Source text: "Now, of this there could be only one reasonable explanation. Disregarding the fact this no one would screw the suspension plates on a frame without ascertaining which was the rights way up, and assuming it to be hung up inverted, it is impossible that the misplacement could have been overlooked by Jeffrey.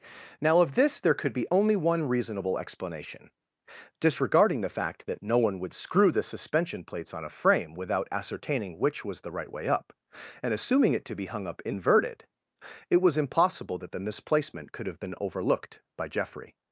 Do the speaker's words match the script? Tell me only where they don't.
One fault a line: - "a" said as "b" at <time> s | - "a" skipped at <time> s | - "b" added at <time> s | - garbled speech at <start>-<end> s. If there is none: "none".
- "this" said as "that" at 5.1 s
- "rights" said as "right" at 9.3 s
- "is" said as "was" at 13.0 s